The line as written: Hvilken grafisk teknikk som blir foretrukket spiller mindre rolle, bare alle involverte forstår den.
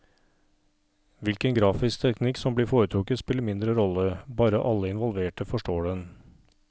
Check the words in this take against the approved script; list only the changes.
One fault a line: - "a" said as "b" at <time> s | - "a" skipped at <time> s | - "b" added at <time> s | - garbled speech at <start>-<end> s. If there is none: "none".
none